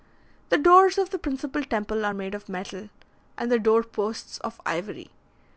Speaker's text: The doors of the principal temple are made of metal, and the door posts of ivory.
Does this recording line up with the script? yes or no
yes